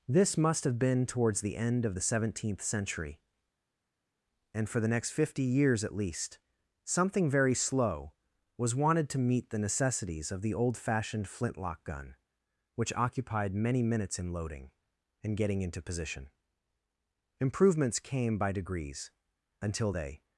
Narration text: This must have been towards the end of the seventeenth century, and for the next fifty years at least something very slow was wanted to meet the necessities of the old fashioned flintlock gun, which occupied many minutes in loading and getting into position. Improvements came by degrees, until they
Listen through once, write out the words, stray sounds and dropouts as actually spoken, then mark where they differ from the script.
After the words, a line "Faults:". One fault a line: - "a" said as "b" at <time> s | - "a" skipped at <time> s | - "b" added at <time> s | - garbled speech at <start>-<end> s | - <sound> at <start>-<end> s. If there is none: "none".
This must have been towards the end of the seventeenth century, and for the next fifty years at least something very slow was wanted to meet the necessities of the old fashioned flintlock gun, which occupied many minutes in loading and getting into position. Improvements came by degrees, until they
Faults:
none